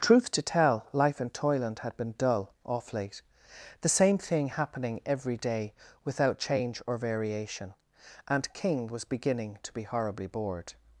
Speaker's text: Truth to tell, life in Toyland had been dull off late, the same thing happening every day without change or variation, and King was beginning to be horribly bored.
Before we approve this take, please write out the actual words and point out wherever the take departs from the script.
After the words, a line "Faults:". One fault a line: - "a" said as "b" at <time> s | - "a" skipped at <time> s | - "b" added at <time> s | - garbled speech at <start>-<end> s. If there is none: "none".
Truth to tell, life in Toyland had been dull off late, the same thing happening every day without change or variation, and King was beginning to be horribly bored.
Faults:
none